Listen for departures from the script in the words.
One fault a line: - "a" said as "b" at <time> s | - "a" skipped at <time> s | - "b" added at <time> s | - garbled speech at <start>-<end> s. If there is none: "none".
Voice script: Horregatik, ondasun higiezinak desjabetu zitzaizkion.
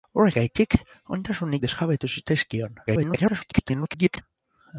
- "higiezinak" skipped at 1.6 s
- garbled speech at 2.9-4.2 s